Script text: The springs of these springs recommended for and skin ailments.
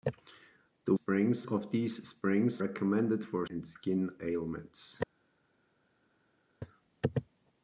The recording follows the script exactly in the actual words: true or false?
true